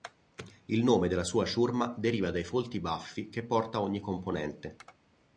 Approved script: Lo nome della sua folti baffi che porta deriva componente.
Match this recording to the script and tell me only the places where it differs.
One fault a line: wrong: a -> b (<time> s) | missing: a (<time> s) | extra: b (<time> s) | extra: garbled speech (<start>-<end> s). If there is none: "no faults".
wrong: Lo -> Il (0.7 s)
extra: ciurma deriva dai (1.4 s)
wrong: deriva -> ogni (3.8 s)